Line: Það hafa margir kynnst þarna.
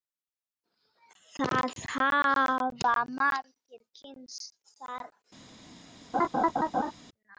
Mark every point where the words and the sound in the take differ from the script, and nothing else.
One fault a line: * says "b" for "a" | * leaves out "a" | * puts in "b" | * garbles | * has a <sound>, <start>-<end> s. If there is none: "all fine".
* has a laugh, 6.1-6.9 s